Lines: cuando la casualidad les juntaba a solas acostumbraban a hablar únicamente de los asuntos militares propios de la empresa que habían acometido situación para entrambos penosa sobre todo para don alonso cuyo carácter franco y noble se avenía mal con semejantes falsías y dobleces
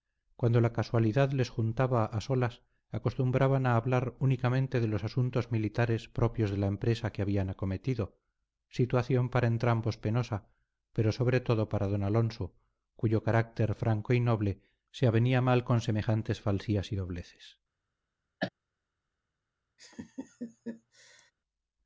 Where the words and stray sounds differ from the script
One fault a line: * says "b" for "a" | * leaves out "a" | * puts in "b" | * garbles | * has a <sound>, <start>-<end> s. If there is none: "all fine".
* puts in "pero"
* has a cough, 18.4-18.5 s
* has a laugh, 19.8-21.3 s